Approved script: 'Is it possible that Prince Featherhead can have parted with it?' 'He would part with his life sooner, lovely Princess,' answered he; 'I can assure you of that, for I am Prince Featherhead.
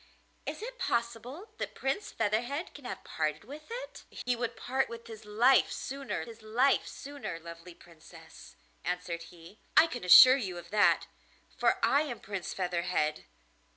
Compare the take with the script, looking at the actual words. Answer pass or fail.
fail